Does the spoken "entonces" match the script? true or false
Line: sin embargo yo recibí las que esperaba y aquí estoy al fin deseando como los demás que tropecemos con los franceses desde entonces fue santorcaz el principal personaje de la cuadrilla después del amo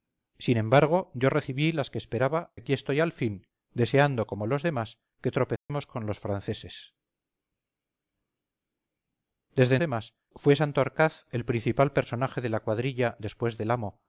false